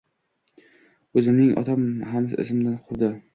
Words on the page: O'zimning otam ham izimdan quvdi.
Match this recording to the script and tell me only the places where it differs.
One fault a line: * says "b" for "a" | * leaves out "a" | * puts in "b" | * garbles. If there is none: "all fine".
all fine